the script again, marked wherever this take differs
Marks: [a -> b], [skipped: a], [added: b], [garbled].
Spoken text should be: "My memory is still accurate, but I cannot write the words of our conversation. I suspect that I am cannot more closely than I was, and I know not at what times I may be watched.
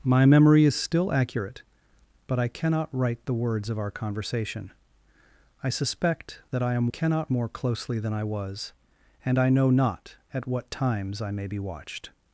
"My memory is still accurate, but I cannot write the words of our conversation. I suspect that I am cannot more closely than I was, and I know not at what times I may be watched.